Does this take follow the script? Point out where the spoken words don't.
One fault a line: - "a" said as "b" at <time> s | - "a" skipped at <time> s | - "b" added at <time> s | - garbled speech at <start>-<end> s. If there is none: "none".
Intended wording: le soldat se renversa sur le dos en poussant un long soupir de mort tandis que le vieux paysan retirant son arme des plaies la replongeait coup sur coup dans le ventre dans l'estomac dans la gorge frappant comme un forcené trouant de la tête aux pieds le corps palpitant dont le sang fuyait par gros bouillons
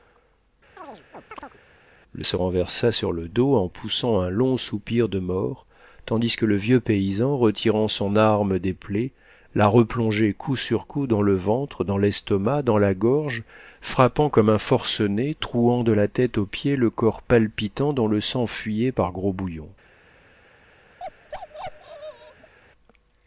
- "soldat" skipped at 2.2 s